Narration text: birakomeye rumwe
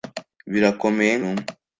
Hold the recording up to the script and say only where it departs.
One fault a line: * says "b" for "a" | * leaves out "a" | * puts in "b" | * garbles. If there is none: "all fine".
all fine